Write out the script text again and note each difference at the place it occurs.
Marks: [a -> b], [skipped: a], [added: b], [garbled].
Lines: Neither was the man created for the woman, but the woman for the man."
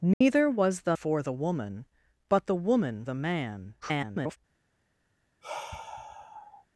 Neither was the [skipped: man created] for the woman, but the woman [skipped: for] the man." [garbled]